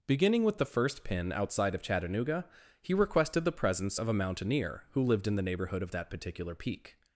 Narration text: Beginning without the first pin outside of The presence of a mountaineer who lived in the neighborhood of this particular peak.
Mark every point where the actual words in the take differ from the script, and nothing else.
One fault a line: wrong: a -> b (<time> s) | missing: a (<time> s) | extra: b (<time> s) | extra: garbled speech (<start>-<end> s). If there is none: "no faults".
wrong: without -> with (0.4 s)
extra: Chattanooga he requested (1.8 s)
wrong: this -> that (5.9 s)